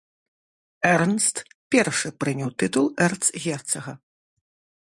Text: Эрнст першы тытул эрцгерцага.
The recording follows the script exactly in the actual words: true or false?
false